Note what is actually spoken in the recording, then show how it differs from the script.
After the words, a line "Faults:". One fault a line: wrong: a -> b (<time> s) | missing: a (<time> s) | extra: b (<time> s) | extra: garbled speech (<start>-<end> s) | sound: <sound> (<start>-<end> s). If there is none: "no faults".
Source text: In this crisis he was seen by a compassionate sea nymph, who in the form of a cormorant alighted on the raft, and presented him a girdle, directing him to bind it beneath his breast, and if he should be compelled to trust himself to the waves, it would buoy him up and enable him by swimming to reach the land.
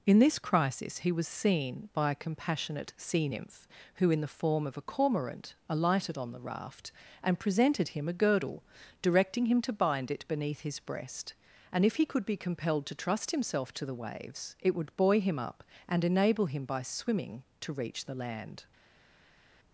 In this crisis he was seen by a compassionate sea nymph, who in the form of a cormorant alighted on the raft, and presented him a girdle, directing him to bind it beneath his breast, and if he could be compelled to trust himself to the waves, it would buoy him up and enable him by swimming to reach the land.
Faults:
wrong: should -> could (12.1 s)